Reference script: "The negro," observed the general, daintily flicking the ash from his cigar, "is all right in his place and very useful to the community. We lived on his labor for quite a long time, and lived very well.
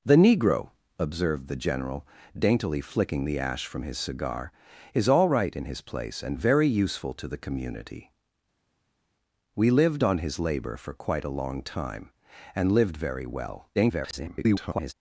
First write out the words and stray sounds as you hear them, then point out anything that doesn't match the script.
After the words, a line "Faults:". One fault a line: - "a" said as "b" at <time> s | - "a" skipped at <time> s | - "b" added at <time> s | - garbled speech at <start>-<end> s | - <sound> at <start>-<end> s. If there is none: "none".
"The negro," observed the general, daintily flicking the ash from his cigar, "is all right in his place and very useful to the community. We lived on his labor for quite a long time, and lived very well. [garbled]
Faults:
- garbled speech at 13.7-14.9 s